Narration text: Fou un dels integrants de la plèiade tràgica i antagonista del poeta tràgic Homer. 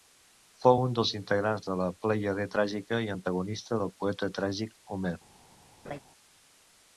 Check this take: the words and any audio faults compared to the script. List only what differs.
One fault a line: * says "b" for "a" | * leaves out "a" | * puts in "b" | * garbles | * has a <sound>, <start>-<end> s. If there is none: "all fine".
* has a laugh, 5.8-6.0 s